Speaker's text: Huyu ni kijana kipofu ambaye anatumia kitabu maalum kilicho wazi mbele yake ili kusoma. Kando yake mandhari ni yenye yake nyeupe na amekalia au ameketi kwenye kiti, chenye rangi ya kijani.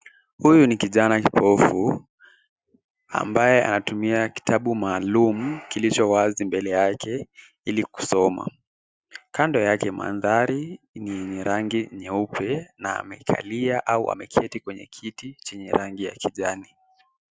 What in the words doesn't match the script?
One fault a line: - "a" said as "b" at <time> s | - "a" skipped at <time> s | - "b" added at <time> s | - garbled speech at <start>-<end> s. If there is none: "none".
- "yake" said as "rangi" at 11.4 s